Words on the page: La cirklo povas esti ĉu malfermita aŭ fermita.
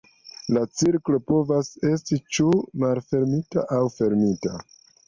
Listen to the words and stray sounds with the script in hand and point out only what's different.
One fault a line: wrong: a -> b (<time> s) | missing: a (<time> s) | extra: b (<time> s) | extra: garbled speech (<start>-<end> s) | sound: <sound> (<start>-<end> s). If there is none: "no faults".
no faults